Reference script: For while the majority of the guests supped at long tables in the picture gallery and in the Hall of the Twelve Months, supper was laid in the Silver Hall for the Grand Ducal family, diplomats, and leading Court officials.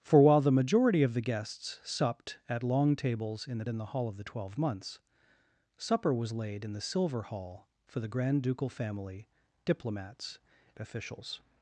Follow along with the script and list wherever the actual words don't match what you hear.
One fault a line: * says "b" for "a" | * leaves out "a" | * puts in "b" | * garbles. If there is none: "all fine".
* leaves out "picture gallery and"
* leaves out "and leading Court"